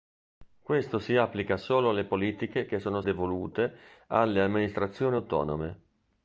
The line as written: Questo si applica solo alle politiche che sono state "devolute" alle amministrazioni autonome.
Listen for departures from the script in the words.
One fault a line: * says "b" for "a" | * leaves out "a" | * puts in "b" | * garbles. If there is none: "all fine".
* leaves out "state"